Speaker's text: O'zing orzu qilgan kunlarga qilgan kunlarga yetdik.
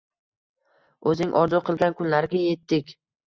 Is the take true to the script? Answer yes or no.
no